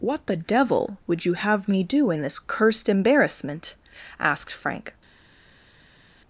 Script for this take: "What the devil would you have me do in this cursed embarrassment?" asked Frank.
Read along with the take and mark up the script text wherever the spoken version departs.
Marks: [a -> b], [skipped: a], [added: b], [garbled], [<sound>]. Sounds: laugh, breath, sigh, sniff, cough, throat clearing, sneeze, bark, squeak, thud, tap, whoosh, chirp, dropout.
"What the devil would you have me do in this cursed embarrassment?" asked Frank.